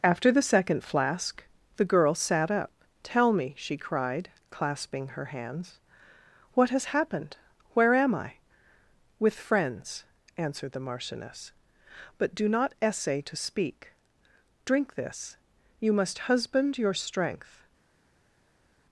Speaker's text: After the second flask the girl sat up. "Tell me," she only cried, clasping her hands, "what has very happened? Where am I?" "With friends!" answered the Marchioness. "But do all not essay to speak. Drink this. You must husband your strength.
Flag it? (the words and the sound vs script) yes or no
yes